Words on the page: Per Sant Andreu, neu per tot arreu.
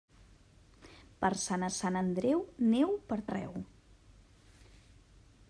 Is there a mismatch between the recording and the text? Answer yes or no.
yes